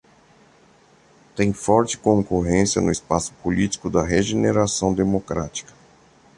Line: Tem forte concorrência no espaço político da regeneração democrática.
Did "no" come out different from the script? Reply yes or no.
no